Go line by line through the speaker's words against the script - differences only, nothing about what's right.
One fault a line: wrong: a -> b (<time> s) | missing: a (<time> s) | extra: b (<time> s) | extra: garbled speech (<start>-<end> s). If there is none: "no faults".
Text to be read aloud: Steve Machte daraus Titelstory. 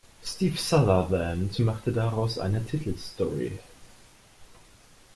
extra: Sutherland (0.6 s)
extra: eine (2.4 s)